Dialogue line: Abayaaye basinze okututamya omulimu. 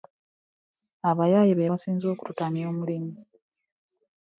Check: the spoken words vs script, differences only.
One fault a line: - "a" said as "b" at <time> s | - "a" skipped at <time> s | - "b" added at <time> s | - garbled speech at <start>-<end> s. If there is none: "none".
- "be" added at 1.6 s